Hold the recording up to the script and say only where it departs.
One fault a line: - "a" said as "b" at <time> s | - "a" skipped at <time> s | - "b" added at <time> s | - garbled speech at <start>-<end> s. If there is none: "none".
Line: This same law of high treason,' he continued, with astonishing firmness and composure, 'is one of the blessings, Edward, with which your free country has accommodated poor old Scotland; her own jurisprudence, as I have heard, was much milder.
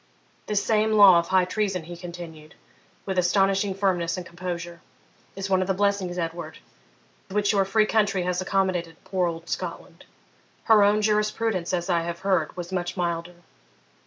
- "with" skipped at 6.6 s